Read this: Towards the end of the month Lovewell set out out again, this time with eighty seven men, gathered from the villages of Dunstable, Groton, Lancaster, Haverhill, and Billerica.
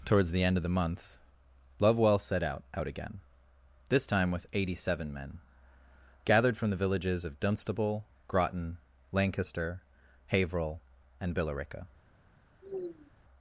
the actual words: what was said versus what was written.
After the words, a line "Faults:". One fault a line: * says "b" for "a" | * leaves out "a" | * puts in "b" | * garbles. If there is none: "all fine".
Towards the end of the month Lovewell set out out again, this time with eighty seven men, gathered from the villages of Dunstable, Groton, Lancaster, Haverhill, and Billerica.
Faults:
all fine